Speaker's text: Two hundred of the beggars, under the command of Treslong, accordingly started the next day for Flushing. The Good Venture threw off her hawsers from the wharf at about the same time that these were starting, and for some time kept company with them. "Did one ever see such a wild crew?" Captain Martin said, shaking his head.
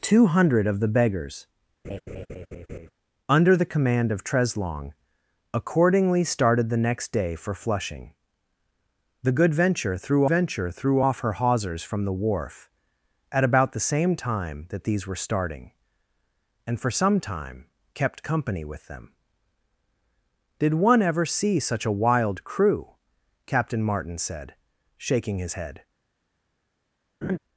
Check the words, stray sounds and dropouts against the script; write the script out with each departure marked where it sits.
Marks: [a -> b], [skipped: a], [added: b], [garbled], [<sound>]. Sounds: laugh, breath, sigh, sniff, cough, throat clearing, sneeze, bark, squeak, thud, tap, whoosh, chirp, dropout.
Two hundred of the beggars, [laugh] under the command of Treslong, accordingly started the next day for Flushing. The Good Venture threw [added: Venture threw] off her hawsers from the wharf at about the same time that these were starting, and for some time kept company with them. "Did one ever see such a wild crew?" Captain Martin said, shaking his head. [laugh]